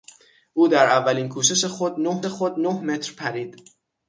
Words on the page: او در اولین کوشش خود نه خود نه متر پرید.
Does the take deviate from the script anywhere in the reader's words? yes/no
no